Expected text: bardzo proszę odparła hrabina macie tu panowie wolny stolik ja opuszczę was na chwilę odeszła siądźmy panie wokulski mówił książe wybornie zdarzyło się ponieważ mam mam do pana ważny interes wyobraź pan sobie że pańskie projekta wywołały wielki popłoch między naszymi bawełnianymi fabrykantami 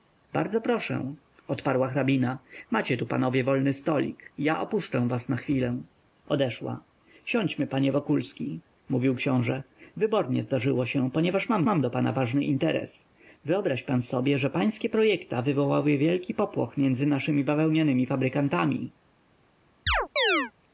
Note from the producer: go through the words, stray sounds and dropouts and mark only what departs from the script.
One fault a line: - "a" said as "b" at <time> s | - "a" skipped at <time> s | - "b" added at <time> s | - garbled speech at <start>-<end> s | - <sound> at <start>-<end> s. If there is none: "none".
- chirp at 19.9-20.5 s